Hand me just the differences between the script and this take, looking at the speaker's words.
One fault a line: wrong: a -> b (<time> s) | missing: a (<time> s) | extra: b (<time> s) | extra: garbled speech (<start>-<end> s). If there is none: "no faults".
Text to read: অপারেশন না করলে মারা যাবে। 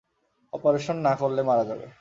no faults